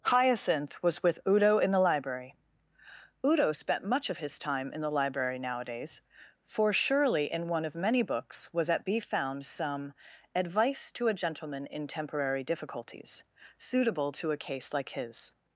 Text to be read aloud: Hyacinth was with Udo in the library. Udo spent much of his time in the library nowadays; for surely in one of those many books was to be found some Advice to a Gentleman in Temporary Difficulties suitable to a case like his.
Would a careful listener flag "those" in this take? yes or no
yes